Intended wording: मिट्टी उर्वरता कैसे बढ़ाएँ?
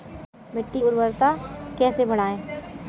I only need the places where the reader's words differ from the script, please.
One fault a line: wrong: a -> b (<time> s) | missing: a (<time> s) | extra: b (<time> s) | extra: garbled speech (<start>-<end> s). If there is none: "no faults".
no faults